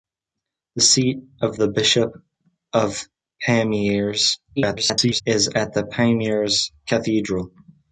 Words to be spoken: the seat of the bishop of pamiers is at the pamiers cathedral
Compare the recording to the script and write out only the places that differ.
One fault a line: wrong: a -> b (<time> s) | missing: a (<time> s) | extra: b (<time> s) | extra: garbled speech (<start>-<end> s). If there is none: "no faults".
extra: garbled speech (4.6-5.2 s)